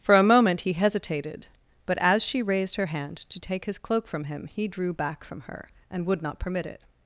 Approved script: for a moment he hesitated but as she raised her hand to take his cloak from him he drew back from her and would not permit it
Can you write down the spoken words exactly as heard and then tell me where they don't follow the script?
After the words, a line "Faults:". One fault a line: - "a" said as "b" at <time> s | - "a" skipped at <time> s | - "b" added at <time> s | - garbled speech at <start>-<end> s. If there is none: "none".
for a moment he hesitated but as she raised her hand to take his cloak from him he drew back from her and would not permit it
Faults:
none